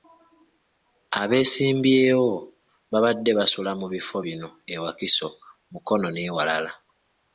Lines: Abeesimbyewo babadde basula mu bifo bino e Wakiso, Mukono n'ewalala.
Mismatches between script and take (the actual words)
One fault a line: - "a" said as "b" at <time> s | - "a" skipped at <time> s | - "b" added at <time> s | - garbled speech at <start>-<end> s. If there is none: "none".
none